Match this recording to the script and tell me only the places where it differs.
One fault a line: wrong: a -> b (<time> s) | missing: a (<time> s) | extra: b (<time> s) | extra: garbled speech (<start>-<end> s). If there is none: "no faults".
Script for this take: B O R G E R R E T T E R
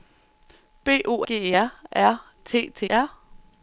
missing: R (1.2 s)
missing: E (2.2 s)
missing: E (2.9 s)